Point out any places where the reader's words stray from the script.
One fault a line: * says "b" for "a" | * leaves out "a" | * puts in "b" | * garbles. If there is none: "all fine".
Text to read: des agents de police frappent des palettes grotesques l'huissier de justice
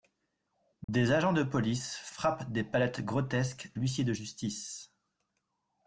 all fine